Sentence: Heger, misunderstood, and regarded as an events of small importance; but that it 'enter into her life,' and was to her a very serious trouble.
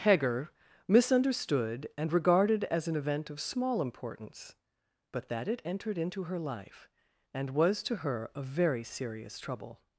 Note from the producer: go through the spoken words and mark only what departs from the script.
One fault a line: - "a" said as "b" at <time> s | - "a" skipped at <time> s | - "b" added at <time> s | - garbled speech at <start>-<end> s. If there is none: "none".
- "events" said as "event" at 3.0 s
- "enter" said as "entered" at 5.7 s